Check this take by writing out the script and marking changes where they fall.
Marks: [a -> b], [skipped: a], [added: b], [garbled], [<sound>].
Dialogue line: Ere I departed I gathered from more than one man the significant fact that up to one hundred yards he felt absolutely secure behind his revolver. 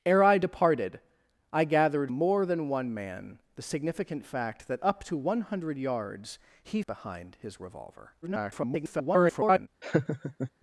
Ere I departed I gathered [skipped: from] more than one man the significant fact that up to one hundred yards he [skipped: felt absolutely secure] behind his revolver. [garbled] [laugh]